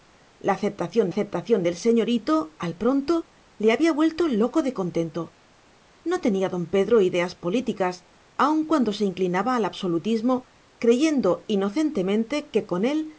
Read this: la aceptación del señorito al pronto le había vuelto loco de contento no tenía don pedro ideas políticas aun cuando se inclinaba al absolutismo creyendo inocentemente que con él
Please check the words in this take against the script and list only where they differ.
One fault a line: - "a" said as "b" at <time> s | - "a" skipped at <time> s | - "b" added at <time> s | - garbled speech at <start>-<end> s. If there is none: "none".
- "aceptación" added at 1.1 s